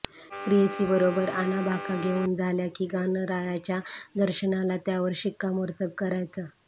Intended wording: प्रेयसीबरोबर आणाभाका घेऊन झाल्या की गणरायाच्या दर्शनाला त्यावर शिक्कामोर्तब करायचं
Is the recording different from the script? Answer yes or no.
no